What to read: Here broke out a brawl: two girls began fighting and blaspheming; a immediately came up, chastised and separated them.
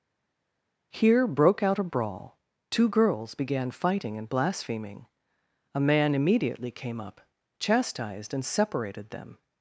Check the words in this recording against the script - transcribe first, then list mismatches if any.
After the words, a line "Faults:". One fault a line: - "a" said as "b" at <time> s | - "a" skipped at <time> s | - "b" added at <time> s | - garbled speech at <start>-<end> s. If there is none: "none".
Here broke out a brawl: two girls began fighting and blaspheming; a man immediately came up, chastised and separated them.
Faults:
- "man" added at 5.8 s